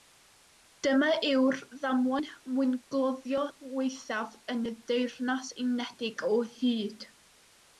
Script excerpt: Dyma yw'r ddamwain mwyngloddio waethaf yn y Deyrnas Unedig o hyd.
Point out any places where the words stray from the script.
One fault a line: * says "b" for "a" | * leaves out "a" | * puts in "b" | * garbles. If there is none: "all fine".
all fine